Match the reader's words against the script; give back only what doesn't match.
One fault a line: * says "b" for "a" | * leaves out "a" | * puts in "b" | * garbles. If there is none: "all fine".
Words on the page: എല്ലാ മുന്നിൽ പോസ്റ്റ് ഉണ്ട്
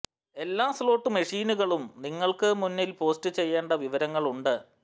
* puts in "സ്ലോട്ട് മെഷീനുകളും നിങ്ങൾക്ക്"
* puts in "ചെയ്യേണ്ട വിവരങ്ങൾ"